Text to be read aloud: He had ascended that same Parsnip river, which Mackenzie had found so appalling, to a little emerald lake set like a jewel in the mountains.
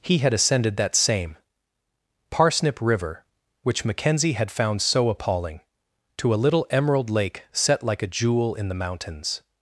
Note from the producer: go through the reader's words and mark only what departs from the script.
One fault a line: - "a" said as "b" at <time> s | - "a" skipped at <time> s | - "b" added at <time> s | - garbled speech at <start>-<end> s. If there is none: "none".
none